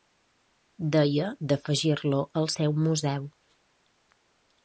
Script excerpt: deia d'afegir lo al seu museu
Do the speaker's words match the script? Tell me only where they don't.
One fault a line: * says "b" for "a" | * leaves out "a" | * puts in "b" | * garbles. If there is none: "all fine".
all fine